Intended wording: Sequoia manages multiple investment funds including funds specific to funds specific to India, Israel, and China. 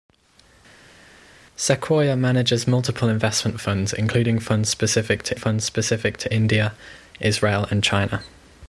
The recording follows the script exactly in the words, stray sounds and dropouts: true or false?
true